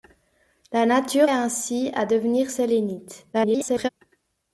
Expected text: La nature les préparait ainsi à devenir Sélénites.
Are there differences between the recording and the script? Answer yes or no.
yes